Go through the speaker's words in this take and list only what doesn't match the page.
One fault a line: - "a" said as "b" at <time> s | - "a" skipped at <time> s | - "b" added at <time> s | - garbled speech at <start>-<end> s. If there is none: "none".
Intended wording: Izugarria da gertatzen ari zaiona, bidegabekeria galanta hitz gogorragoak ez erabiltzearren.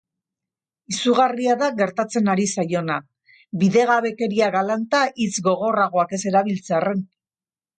none